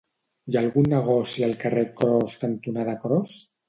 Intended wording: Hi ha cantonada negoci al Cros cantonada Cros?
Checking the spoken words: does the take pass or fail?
fail